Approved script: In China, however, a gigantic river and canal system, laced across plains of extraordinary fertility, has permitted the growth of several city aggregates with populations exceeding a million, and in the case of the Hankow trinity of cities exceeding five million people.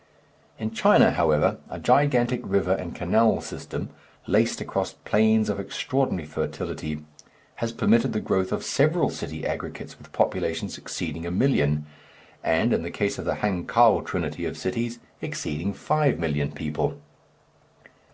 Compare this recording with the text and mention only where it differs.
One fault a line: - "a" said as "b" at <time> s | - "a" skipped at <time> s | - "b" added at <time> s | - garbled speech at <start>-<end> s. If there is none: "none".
none